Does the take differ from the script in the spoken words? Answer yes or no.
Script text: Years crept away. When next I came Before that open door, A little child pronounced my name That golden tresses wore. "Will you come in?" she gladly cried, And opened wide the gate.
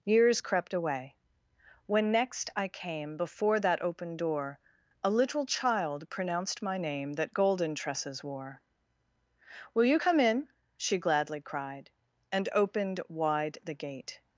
no